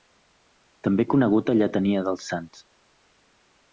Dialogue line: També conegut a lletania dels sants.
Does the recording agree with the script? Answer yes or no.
yes